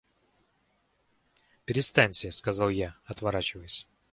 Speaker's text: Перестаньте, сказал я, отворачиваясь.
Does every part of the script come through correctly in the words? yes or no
yes